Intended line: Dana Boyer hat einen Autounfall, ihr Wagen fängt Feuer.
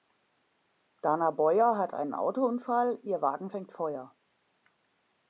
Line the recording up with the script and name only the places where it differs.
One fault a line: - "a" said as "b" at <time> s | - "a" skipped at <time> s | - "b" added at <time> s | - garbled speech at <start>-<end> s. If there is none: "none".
none